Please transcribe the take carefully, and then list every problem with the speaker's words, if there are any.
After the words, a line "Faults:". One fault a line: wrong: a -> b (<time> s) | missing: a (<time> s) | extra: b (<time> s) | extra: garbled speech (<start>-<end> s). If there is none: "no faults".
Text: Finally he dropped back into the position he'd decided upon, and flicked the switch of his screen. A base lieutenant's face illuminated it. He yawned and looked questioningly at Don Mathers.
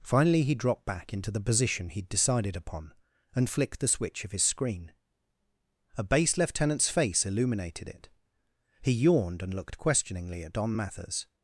Finally he dropped back into the position he'd decided upon, and flicked the switch of his screen. A base lieutenant's face illuminated it. He yawned and looked questioningly at Don Mathers.
Faults:
no faults